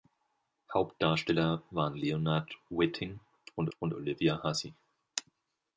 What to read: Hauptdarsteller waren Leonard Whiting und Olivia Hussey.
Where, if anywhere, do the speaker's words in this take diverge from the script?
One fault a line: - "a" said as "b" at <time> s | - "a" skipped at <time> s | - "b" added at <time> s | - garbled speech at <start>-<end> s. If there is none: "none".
- "und" added at 3.8 s